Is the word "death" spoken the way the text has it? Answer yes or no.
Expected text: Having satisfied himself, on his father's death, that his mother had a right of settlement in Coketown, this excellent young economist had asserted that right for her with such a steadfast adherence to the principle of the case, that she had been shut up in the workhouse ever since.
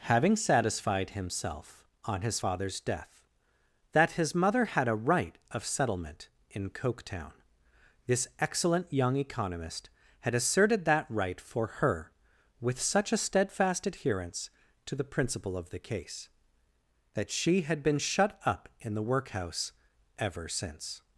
yes